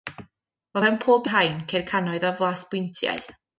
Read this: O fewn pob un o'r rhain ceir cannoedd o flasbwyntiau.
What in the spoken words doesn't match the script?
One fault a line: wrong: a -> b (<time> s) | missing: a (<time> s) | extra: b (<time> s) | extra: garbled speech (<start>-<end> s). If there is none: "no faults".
missing: un (1.3 s)